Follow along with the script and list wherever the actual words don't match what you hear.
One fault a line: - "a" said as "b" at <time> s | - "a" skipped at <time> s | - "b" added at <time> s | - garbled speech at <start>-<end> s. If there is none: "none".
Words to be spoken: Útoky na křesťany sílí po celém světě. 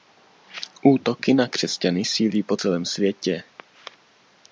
none